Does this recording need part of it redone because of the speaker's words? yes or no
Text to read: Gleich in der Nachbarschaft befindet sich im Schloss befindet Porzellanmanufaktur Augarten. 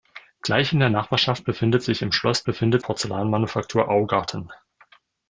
no